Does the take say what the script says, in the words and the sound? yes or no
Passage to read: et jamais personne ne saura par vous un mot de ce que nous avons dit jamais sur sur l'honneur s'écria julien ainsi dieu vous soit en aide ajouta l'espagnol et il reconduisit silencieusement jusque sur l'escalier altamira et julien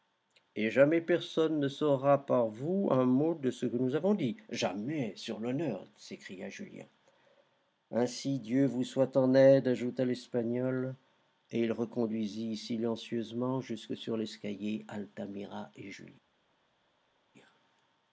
no